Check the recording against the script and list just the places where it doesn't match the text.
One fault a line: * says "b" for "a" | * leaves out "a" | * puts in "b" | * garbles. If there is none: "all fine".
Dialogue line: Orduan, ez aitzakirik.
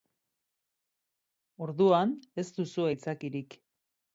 * puts in "duzu"